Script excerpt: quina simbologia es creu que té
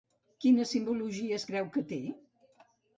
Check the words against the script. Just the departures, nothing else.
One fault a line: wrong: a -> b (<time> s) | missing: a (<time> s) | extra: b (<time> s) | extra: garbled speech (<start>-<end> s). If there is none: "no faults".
no faults